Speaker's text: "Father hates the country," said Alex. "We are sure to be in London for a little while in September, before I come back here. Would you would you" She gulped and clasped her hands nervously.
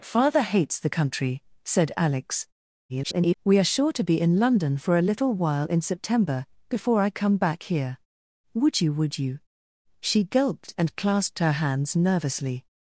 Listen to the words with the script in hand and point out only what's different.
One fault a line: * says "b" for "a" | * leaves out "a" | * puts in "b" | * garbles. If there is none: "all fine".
* garbles